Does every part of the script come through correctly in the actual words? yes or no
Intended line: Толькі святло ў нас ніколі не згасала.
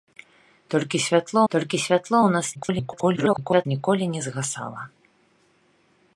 no